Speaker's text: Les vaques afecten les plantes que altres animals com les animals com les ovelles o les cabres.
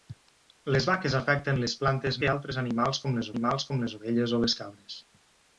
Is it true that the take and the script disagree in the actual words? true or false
false